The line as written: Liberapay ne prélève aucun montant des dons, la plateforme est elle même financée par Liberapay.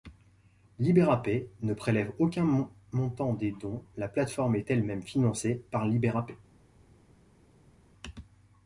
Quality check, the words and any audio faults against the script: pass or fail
pass